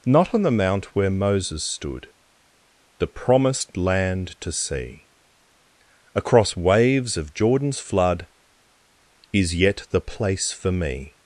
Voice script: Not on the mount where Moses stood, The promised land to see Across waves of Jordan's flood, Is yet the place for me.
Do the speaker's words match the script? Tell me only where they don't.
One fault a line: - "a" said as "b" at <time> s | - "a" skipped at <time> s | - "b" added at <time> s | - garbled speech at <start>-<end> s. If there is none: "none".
none